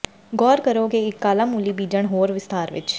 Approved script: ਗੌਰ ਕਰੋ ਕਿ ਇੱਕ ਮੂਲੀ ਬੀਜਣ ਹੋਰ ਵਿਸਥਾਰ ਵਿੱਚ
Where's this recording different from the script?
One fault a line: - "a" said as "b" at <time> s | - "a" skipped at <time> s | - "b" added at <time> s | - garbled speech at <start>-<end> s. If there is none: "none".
- "ਕਾਲਾ" added at 1.2 s